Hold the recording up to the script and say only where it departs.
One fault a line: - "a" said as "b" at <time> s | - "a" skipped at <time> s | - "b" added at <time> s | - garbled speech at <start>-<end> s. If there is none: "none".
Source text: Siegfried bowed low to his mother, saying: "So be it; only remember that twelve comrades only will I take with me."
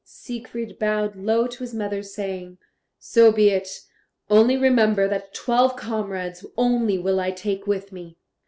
none